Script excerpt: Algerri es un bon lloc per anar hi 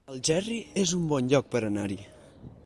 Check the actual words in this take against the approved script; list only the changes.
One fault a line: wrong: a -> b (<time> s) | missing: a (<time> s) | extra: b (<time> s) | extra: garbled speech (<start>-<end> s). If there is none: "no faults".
no faults